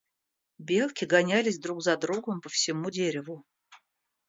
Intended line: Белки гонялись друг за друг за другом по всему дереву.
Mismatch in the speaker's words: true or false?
true